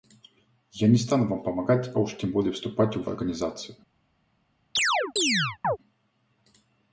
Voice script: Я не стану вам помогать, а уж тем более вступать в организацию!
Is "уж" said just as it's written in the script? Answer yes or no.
yes